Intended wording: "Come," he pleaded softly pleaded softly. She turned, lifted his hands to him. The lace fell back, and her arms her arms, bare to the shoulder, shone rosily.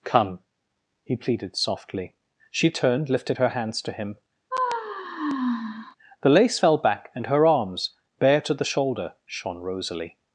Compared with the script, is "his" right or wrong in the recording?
wrong